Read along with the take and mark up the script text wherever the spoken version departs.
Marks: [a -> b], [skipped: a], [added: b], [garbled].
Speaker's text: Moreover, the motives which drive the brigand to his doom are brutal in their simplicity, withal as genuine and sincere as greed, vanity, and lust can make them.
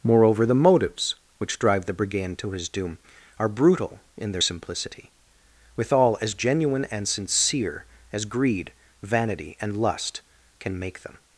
Moreover, the motives which drive the brigand to his doom are brutal in their simplicity, withal as genuine and sincere as greed, vanity, and lust can make them.